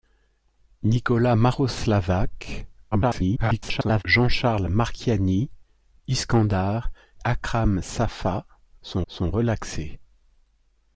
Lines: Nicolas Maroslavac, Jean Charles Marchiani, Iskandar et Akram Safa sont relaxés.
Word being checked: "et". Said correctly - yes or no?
no